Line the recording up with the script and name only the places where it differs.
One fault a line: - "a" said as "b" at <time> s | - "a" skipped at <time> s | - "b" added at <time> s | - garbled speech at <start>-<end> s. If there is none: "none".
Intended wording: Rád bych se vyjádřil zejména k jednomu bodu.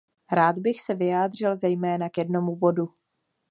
none